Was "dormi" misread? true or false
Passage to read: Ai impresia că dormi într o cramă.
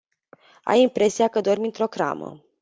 false